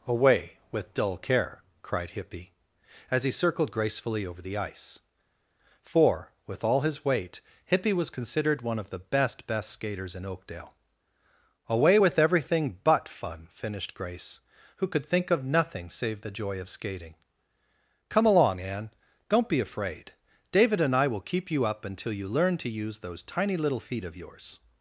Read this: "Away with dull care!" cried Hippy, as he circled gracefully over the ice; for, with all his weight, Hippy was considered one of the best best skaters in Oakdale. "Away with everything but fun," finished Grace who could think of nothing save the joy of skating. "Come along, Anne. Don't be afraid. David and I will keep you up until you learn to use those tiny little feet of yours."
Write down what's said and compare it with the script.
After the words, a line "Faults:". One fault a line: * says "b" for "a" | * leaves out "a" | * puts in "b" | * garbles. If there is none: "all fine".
"Away with dull care!" cried Hippy, as he circled gracefully over the ice; for, with all his weight, Hippy was considered one of the best best skaters in Oakdale. "Away with everything but fun," finished Grace who could think of nothing save the joy of skating. "Come along, Anne. Don't be afraid. David and I will keep you up until you learn to use those tiny little feet of yours."
Faults:
all fine